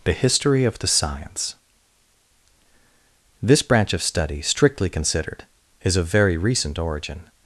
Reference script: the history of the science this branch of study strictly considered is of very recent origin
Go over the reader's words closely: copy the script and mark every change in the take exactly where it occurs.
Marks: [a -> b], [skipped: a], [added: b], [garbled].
the history of the science this branch of study strictly considered is of very recent origin